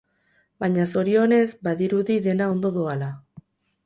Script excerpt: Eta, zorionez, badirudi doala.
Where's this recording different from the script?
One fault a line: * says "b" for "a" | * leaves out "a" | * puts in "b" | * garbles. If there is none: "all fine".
* says "Baina" for "Eta"
* puts in "dena ondo"